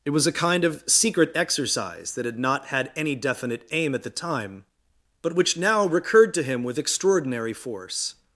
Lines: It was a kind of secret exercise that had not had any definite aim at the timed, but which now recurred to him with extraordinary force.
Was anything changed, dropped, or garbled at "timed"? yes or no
yes